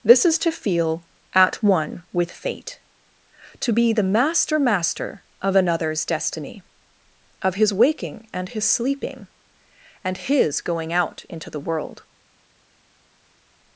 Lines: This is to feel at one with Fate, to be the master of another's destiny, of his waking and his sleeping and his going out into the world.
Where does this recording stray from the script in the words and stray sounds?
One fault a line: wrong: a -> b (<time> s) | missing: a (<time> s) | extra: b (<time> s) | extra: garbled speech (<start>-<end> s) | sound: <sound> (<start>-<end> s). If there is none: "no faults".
extra: master (4.6 s)